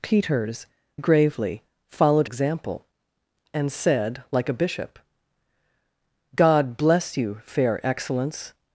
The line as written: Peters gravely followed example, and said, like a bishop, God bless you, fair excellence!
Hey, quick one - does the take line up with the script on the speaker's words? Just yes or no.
yes